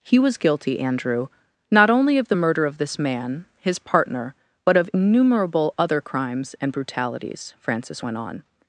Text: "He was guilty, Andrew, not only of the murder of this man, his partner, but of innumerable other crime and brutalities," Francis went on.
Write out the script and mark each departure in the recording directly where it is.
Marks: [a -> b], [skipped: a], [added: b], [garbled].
"He was guilty, Andrew, not only of the murder of this man, his partner, but of innumerable other [crime -> crimes] and brutalities," Francis went on.